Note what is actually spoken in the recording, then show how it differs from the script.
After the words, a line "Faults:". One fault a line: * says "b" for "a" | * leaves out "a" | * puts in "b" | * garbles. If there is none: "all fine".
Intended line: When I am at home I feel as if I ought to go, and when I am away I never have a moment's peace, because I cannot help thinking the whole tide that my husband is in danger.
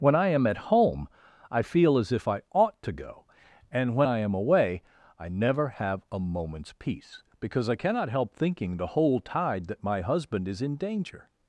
When I am at home I feel as if I ought to go, and when I am away I never have a moment's peace, because I cannot help thinking the whole tide that my husband is in danger.
Faults:
all fine